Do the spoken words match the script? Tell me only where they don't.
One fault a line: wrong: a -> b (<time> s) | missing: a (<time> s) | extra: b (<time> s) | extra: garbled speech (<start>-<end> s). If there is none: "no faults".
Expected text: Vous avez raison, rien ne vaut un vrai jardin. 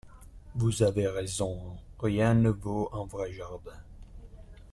no faults